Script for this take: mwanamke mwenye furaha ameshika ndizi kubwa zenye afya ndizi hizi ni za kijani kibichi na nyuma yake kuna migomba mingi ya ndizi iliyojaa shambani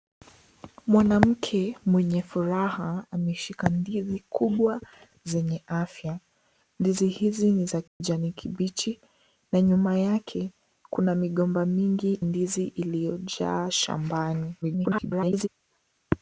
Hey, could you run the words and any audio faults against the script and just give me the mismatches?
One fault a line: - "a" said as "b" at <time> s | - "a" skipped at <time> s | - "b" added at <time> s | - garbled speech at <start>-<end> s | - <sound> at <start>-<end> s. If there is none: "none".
- dropout at 7.9-8.0 s
- "ya" skipped at 12.2 s
- garbled speech at 14.6-15.5 s